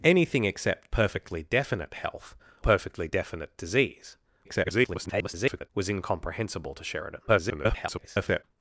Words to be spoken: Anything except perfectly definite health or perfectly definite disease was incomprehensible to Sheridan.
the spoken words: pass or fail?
fail